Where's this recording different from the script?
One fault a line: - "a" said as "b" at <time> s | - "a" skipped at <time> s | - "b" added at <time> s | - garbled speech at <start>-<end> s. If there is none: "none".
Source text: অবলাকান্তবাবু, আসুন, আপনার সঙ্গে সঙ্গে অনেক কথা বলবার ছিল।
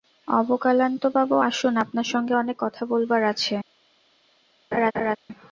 - "সঙ্গে" skipped at 2.3 s
- "ছিল" said as "আছে" at 3.2 s